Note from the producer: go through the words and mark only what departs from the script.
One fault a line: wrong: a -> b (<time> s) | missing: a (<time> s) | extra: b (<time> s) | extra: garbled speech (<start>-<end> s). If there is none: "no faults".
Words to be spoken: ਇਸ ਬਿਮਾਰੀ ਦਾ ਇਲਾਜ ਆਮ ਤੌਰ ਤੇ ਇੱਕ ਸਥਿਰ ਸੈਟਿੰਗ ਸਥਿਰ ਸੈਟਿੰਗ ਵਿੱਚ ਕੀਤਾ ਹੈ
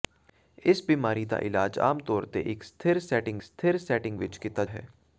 no faults